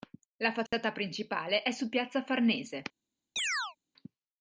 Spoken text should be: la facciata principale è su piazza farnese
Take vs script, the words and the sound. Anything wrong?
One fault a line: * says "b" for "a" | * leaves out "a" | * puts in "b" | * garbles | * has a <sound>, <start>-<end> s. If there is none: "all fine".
* has a dropout, 0.7-0.7 s
* has a chirp, 3.4-3.8 s